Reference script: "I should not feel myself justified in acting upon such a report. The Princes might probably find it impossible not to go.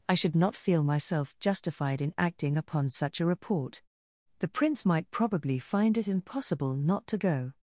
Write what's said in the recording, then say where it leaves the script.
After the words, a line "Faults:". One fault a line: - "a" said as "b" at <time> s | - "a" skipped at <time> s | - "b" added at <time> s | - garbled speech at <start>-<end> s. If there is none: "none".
"I should not feel myself justified in acting upon such a report. The Prince might probably find it impossible not to go.
Faults:
- "Princes" said as "Prince" at 4.5 s